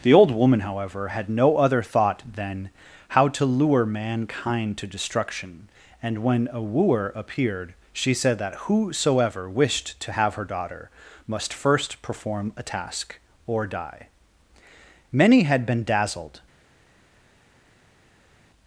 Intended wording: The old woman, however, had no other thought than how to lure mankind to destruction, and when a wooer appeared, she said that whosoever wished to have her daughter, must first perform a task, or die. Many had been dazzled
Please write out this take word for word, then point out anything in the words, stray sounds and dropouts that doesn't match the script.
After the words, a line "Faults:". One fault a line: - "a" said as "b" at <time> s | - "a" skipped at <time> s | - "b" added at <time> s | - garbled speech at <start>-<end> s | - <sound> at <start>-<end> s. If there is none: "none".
The old woman, however, had no other thought than how to lure mankind to destruction, and when a wooer appeared, she said that whosoever wished to have her daughter, must first perform a task, or die. Many had been dazzled
Faults:
none